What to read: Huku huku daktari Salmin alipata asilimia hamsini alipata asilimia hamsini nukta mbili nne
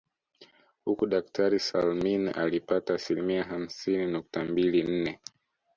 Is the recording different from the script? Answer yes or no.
yes